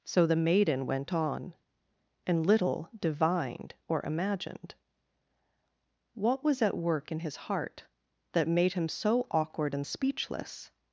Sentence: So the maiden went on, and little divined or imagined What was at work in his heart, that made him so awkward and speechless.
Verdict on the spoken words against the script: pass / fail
pass